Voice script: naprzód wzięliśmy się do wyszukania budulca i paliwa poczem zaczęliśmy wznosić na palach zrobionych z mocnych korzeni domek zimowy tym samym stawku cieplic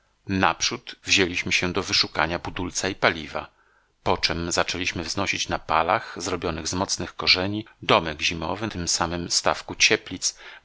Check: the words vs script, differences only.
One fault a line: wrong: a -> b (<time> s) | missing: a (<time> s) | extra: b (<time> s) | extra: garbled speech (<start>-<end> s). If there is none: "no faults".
no faults